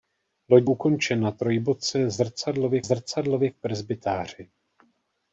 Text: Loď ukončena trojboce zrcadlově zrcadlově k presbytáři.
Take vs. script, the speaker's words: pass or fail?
pass